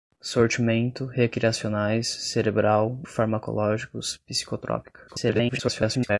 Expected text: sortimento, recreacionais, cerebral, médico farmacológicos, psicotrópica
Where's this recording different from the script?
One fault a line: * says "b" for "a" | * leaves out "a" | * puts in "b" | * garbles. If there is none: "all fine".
* leaves out "médico"
* garbles